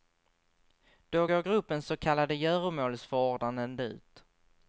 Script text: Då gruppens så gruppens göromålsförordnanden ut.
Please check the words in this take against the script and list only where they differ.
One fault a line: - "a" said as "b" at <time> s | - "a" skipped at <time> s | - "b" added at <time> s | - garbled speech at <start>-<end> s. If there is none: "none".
- "går" added at 1.2 s
- "gruppens" said as "kallade" at 2.0 s